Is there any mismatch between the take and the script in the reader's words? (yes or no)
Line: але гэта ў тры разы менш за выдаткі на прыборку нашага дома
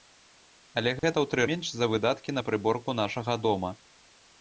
yes